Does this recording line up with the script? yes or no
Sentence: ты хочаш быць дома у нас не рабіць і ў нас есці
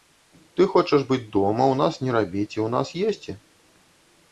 yes